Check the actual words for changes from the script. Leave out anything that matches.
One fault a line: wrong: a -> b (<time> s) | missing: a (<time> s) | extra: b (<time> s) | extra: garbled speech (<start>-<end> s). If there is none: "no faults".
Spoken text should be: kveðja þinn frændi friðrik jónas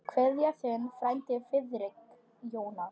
no faults